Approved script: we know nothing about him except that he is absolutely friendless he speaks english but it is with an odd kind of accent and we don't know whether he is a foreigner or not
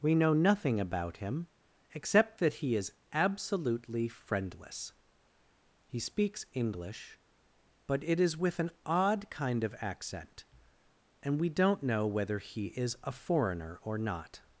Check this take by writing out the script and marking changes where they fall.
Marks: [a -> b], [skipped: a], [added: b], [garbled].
we know nothing about him except that he is absolutely friendless he speaks english but it is with an odd kind of accent and we don't know whether he is a foreigner or not